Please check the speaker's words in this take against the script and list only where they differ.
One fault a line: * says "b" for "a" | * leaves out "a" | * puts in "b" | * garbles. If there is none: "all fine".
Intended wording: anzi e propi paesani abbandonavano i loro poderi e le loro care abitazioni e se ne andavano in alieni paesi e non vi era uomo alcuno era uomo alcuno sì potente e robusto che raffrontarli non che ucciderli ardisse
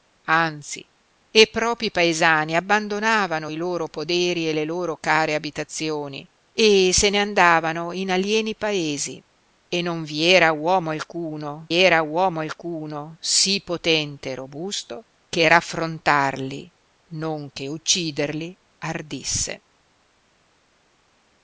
all fine